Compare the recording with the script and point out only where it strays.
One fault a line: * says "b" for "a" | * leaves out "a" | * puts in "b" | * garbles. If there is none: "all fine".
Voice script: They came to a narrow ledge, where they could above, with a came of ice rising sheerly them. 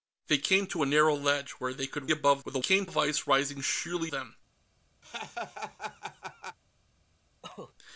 all fine